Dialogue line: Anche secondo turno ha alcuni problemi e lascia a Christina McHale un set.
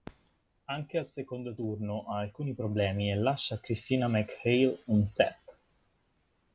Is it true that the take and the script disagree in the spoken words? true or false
true